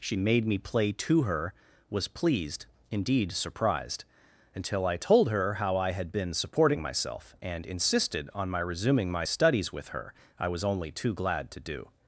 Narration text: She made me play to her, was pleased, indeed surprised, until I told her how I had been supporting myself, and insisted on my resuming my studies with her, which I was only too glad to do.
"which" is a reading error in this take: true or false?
true